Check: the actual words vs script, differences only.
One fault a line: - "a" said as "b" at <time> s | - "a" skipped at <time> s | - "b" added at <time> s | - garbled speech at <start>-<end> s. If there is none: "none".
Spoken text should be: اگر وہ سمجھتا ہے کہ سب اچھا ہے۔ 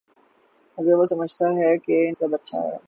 none